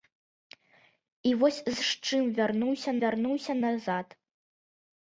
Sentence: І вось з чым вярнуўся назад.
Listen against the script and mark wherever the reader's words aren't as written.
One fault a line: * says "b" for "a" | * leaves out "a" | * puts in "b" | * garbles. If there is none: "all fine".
* puts in "вярнуўся"